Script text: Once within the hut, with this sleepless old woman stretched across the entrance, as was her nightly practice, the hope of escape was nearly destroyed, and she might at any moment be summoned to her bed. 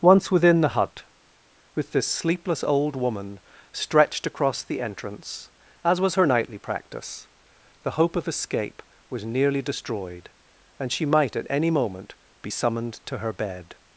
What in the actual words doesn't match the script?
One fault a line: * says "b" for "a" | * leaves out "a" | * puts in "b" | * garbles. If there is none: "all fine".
all fine